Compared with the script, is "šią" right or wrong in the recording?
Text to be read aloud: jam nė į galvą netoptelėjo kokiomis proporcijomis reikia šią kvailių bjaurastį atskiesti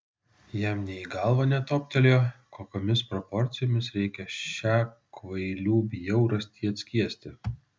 right